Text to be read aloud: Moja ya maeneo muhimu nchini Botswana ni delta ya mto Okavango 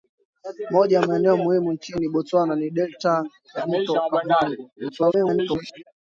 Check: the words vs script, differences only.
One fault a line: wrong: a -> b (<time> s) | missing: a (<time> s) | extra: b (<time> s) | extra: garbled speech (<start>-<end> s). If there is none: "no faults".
extra: garbled speech (4.8-5.8 s)